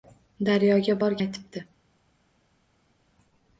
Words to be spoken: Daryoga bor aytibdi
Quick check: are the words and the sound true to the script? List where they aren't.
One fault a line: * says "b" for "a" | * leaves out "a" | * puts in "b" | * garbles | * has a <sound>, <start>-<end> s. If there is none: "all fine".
all fine